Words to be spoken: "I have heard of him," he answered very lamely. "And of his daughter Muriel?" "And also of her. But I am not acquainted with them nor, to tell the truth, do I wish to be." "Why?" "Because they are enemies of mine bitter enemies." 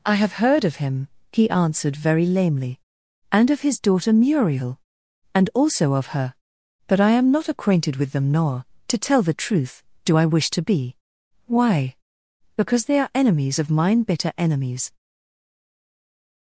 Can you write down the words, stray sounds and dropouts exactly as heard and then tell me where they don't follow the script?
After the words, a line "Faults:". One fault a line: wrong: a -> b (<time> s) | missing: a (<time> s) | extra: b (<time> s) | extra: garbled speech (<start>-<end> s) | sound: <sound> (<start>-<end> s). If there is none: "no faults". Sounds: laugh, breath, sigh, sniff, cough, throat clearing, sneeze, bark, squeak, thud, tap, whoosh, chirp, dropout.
"I have heard of him," he answered very lamely. "And of his daughter Muriel?" "And also of her. But I am not acquainted with them nor, to tell the truth, do I wish to be." "Why?" "Because they are enemies of mine bitter enemies."
Faults:
no faults